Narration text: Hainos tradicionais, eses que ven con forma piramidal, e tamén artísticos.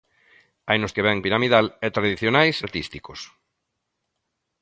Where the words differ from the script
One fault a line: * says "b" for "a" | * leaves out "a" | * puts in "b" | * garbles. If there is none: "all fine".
* leaves out "tradicionais eses"
* leaves out "con forma"
* says "tradicionais" for "tamén"